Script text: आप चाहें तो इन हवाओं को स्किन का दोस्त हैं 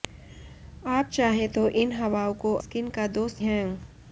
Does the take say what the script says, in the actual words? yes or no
yes